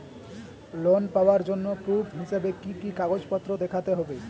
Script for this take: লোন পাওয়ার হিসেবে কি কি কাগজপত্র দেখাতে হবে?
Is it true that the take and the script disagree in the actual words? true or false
true